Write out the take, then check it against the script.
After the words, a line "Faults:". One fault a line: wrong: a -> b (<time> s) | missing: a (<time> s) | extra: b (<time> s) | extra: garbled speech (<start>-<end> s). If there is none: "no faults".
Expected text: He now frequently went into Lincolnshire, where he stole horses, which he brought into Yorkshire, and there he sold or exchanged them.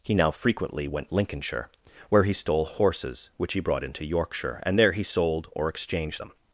He now frequently went Lincolnshire, where he stole horses, which he brought into Yorkshire, and there he sold or exchanged them.
Faults:
missing: into (1.1 s)